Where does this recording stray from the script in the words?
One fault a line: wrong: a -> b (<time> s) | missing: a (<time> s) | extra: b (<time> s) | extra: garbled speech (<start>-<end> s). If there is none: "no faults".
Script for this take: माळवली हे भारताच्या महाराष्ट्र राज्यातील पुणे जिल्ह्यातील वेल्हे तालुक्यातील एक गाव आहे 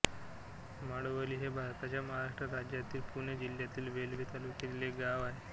no faults